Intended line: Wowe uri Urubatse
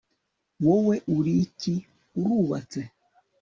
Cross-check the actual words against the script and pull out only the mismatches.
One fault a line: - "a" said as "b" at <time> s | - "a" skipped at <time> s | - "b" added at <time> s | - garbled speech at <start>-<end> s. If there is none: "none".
- "iki" added at 1.4 s